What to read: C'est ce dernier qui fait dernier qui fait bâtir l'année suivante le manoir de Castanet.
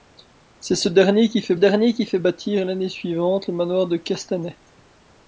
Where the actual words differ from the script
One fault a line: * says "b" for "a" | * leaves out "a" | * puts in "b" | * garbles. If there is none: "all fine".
all fine